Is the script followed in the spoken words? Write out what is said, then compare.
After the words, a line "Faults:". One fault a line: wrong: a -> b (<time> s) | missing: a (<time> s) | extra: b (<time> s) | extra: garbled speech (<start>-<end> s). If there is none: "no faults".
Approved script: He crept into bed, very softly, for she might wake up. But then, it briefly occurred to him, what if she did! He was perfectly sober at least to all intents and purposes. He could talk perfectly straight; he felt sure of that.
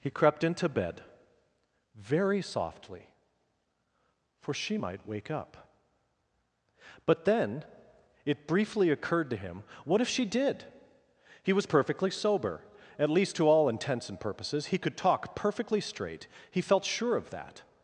He crept into bed, very softly, for she might wake up. But then, it briefly occurred to him, what if she did! He was perfectly sober at least to all intents and purposes. He could talk perfectly straight; he felt sure of that.
Faults:
no faults